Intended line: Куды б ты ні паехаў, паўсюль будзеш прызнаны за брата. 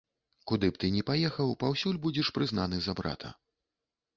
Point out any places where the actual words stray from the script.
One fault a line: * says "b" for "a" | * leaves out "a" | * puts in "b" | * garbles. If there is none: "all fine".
all fine